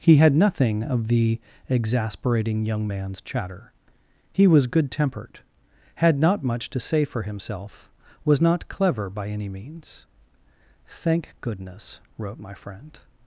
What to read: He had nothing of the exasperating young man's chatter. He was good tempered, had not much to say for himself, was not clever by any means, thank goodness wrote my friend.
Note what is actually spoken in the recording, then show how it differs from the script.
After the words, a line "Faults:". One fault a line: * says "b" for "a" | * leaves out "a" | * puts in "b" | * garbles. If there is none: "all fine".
He had nothing of the exasperating young man's chatter. He was good tempered, had not much to say for himself, was not clever by any means, thank goodness wrote my friend.
Faults:
all fine